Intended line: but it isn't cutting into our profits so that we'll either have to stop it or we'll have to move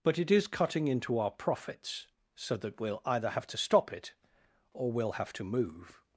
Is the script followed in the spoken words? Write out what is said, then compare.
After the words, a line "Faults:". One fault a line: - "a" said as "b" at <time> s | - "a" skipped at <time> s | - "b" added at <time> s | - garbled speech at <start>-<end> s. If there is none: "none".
but it is cutting into our profits so that we'll either have to stop it or we'll have to move
Faults:
- "isn't" said as "is" at 0.3 s